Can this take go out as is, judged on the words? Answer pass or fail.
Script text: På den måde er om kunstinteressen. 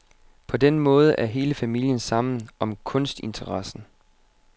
fail